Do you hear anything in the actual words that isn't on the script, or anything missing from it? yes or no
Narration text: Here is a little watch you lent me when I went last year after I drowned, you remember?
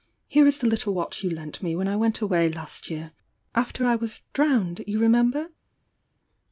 yes